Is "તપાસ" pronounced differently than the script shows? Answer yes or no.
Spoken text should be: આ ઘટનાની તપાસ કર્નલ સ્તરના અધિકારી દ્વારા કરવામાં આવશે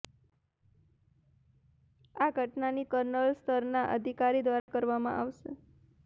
yes